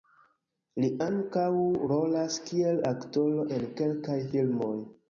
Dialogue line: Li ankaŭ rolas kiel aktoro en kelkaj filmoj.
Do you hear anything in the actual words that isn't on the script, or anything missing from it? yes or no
no